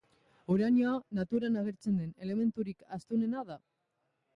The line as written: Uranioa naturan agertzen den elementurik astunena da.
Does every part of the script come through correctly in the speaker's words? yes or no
yes